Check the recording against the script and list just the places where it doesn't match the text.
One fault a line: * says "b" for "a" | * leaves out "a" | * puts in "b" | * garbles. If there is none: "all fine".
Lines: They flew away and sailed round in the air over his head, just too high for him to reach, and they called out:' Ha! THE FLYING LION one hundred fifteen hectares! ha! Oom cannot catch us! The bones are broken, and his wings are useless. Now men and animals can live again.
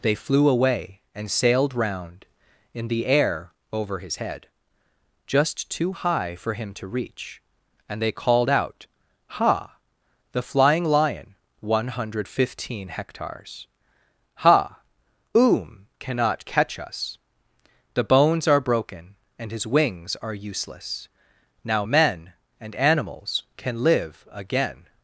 all fine